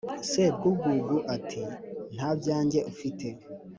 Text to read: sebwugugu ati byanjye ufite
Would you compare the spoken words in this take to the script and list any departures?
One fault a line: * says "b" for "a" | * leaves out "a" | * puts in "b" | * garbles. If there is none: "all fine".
* puts in "nta"